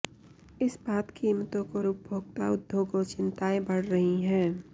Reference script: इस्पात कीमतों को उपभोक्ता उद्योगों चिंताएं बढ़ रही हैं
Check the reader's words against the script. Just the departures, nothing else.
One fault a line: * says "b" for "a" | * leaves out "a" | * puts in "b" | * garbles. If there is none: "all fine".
all fine